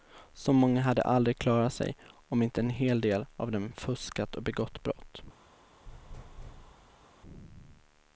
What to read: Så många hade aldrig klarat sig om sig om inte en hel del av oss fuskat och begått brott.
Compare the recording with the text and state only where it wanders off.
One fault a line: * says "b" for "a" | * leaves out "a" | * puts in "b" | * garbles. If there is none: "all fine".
* leaves out "sig om"
* says "dem" for "oss"